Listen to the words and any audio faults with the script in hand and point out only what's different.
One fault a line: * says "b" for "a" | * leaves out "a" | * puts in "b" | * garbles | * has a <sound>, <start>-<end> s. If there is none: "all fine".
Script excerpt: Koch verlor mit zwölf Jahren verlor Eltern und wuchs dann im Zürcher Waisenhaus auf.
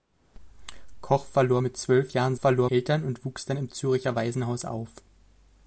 all fine